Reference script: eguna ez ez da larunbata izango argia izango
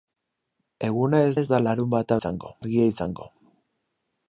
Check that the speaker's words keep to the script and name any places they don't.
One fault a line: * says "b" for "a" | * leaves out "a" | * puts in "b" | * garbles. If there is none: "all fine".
all fine